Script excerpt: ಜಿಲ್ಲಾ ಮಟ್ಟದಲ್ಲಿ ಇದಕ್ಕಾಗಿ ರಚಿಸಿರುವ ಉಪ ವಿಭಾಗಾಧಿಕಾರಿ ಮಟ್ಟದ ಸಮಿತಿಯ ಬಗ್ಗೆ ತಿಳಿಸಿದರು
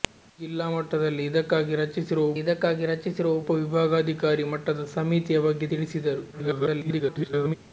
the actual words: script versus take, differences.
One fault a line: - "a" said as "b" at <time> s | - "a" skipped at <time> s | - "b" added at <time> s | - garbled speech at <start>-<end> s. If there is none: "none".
- "ಇದಕ್ಕಾಗಿ ರಚಿಸಿರುವ" added at 2.4 s
- garbled speech at 6.3-7.6 s